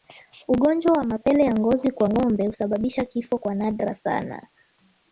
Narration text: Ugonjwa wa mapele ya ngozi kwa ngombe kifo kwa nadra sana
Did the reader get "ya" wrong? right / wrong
right